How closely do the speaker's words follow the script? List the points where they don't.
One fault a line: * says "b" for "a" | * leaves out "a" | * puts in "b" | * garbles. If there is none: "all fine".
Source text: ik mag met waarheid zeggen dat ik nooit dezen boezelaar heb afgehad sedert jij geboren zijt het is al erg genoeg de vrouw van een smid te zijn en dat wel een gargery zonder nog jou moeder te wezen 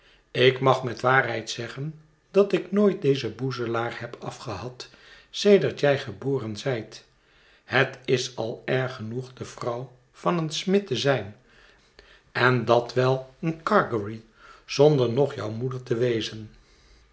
all fine